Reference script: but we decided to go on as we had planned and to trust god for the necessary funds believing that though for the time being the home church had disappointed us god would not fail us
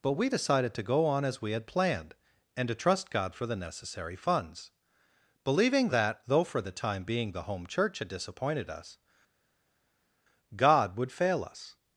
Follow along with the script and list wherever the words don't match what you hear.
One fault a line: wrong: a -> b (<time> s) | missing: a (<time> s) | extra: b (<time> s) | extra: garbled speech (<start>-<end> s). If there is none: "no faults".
missing: not (11.1 s)